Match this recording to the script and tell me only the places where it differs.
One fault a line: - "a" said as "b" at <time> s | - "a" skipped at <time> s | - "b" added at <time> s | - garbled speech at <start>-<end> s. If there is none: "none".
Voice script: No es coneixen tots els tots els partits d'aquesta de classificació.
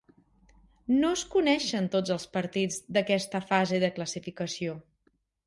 - "tots els" skipped at 2.3 s
- "fase" added at 3.5 s